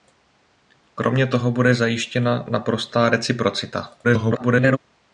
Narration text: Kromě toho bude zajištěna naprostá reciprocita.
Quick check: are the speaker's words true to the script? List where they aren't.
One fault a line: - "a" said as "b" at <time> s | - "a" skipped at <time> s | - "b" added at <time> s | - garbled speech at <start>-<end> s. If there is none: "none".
- garbled speech at 4.0-4.8 s